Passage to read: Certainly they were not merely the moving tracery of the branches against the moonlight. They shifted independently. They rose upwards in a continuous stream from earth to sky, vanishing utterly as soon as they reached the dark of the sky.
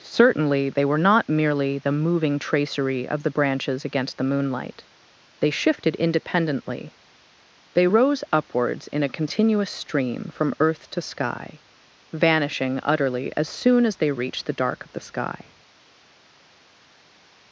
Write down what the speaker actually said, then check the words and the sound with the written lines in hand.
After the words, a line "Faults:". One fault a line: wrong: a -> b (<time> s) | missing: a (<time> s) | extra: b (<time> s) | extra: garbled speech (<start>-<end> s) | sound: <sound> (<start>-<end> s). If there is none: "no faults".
Certainly they were not merely the moving tracery of the branches against the moonlight. They shifted independently. They rose upwards in a continuous stream from earth to sky, vanishing utterly as soon as they reached the dark of the sky.
Faults:
no faults